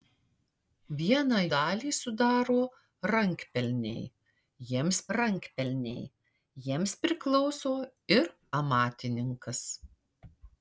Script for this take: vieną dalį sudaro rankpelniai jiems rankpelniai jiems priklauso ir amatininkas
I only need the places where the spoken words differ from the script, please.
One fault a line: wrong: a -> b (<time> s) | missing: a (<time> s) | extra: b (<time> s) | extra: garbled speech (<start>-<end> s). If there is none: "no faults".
no faults